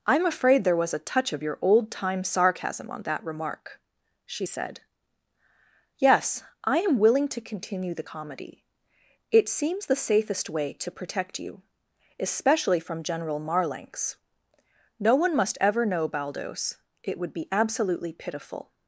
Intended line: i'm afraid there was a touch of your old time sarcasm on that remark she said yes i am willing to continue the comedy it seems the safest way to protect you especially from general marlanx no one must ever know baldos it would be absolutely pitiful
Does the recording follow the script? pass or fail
pass